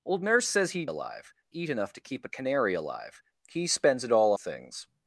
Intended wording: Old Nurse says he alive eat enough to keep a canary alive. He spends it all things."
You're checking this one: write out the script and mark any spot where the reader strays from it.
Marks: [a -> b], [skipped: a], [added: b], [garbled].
Old Nurse says he alive eat enough to keep a canary alive. He spends it all things."